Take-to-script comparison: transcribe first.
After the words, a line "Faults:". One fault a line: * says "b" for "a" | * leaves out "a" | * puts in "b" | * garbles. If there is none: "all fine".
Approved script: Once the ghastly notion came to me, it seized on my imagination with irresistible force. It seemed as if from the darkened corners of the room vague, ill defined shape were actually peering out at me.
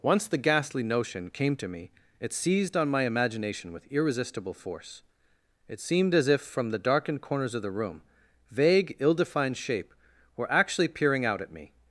Once the ghastly notion came to me, it seized on my imagination with irresistible force. It seemed as if from the darkened corners of the room vague, ill defined shape were actually peering out at me.
Faults:
all fine